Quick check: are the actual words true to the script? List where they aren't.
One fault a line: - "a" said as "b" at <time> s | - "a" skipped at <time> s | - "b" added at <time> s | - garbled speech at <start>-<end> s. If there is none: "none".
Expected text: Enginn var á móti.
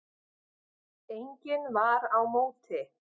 none